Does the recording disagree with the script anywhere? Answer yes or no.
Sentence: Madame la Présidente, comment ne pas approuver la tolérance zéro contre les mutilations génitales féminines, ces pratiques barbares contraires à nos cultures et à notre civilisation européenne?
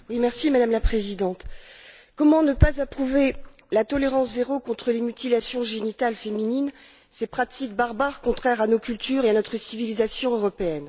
no